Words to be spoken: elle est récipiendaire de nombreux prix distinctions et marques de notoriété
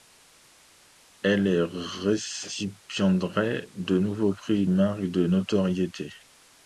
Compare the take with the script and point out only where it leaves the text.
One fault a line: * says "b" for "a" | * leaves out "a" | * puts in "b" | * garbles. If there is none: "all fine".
* leaves out "distinctions et"